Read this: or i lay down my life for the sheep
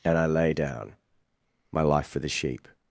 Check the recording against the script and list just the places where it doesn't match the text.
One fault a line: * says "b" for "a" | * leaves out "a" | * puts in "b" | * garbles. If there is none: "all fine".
* says "and" for "or"